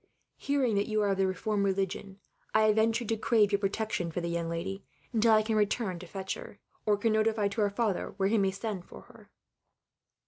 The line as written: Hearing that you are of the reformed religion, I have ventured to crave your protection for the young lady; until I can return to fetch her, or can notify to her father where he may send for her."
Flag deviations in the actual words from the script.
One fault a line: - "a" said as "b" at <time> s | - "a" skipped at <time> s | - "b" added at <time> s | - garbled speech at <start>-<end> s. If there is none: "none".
none